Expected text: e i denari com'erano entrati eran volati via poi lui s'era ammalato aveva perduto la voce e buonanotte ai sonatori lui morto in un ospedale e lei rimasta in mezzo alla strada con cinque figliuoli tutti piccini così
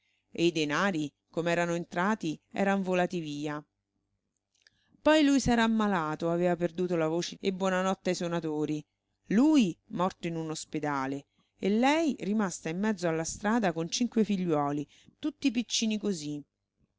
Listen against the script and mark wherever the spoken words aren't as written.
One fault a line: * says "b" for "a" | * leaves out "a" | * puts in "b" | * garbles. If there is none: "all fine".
all fine